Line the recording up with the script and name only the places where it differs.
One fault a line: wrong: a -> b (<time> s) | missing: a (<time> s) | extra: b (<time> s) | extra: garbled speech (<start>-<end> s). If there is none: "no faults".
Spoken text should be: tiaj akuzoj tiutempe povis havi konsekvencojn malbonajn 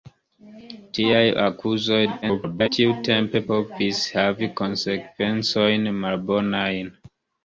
extra: garbled speech (2.2-2.7 s)